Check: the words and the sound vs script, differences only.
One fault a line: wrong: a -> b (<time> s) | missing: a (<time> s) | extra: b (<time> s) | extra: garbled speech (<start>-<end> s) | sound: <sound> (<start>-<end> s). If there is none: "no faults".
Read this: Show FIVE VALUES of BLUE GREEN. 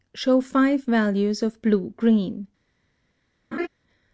sound: laugh (3.5-3.7 s)